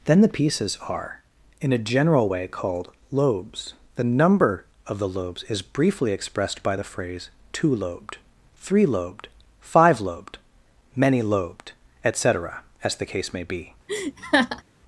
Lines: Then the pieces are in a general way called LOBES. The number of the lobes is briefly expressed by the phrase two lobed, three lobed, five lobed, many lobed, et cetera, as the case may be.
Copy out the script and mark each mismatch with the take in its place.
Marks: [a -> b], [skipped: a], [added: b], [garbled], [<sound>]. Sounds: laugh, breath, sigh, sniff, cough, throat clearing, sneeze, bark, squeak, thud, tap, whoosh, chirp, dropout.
Then the pieces are in a general way called LOBES. The number of the lobes is briefly expressed by the phrase two lobed, three lobed, five lobed, many lobed, et cetera, as the case may be. [laugh]